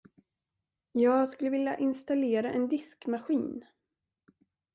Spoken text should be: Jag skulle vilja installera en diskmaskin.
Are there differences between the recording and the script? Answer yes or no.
no